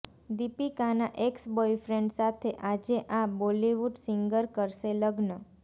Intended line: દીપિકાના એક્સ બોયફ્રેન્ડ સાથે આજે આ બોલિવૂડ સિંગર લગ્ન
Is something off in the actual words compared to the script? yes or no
yes